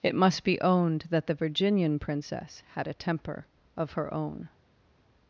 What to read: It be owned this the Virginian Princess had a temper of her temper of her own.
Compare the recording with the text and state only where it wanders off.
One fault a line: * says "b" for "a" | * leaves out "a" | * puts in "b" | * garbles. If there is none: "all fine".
* puts in "must"
* says "that" for "this"
* leaves out "temper of her"